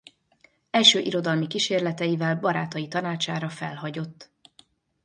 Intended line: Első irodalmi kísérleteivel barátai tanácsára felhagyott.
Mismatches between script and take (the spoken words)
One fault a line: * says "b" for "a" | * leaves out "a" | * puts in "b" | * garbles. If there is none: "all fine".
all fine